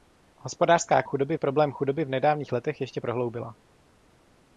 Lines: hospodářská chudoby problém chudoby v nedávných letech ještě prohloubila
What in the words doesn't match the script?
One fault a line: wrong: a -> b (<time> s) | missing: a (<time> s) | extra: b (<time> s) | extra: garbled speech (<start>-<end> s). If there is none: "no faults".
no faults